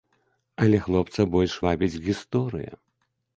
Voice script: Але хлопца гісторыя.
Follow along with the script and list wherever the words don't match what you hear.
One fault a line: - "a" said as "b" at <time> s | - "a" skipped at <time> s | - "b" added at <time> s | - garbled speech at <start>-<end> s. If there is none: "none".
- "больш вабіць" added at 1.3 s